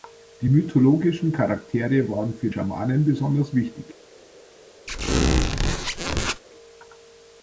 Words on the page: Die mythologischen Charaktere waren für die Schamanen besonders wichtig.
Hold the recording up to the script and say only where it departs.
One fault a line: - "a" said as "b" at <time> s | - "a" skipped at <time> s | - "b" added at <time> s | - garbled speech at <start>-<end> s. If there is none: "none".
- "die" skipped at 2.5 s